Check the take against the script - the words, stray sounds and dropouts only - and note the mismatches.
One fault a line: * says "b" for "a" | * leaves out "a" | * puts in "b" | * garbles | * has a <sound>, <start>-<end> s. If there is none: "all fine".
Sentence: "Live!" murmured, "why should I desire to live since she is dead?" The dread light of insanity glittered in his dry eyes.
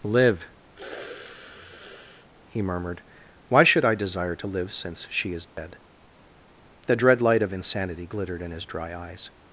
* has a sniff, 0.7-2.3 s
* puts in "he"
* has a dropout, 5.5-5.6 s